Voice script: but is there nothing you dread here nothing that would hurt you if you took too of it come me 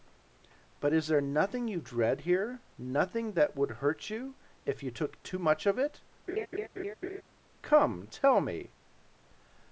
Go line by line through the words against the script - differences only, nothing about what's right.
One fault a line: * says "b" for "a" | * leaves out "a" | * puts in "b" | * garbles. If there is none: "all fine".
* puts in "much"
* puts in "tell"